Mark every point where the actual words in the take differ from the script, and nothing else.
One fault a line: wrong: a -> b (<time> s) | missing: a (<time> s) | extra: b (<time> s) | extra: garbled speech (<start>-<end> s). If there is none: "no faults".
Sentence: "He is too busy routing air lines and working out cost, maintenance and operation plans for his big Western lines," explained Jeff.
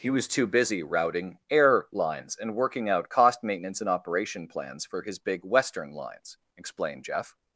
wrong: is -> was (0.1 s)